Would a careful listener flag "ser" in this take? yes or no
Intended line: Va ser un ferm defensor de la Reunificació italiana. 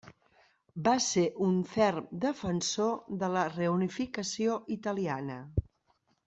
no